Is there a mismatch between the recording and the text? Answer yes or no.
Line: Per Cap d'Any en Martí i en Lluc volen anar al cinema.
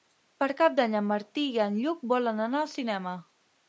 no